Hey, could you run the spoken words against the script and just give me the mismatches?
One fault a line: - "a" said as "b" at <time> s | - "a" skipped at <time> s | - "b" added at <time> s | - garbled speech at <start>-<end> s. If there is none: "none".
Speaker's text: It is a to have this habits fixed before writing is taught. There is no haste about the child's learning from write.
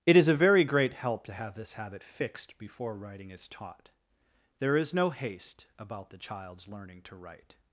- "very great help" added at 0.3 s
- "habits" said as "habit" at 1.7 s
- "from" said as "to" at 7.0 s